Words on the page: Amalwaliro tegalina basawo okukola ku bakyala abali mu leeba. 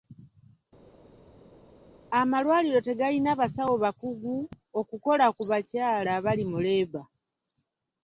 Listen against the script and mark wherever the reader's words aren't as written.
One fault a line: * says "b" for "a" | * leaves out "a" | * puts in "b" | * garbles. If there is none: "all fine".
* puts in "bakugu"